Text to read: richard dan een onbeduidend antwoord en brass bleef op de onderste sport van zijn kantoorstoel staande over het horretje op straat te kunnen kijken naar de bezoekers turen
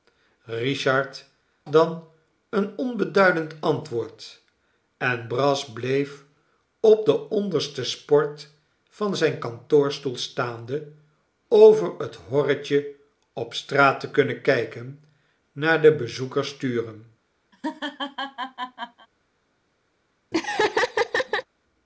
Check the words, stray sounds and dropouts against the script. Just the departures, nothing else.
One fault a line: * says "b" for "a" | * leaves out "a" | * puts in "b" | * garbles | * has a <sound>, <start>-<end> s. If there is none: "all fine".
* has a laugh, 17.5-19.1 s
* has a laugh, 20.3-21.4 s